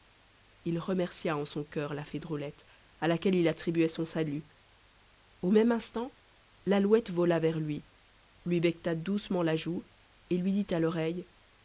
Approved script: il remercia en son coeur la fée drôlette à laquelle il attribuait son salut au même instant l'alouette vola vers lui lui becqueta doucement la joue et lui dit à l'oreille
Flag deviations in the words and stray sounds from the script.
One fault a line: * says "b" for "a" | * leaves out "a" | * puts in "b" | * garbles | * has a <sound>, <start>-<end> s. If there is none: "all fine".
all fine